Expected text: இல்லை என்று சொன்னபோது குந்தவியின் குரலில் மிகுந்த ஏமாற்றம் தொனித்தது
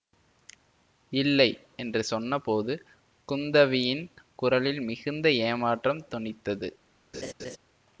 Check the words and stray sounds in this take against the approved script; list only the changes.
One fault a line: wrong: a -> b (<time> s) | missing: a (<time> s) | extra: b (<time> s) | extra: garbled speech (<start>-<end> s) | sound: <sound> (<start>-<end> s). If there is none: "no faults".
sound: laugh (7.1-7.6 s)